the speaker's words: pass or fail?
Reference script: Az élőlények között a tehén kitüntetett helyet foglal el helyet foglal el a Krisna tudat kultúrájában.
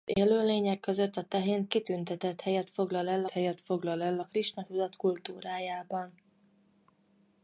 pass